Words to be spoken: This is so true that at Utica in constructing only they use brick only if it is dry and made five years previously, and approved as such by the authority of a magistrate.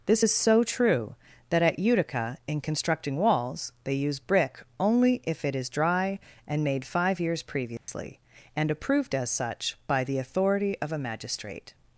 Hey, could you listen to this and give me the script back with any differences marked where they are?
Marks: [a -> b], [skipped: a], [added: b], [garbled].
This is so true that at Utica in constructing [only -> walls] they use brick only if it is dry and made five years previously, and approved as such by the authority of a magistrate.